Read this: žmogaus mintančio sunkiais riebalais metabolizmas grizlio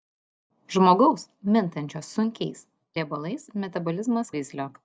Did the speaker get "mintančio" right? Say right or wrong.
right